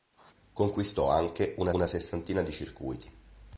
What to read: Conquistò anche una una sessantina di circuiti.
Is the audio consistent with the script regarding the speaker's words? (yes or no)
yes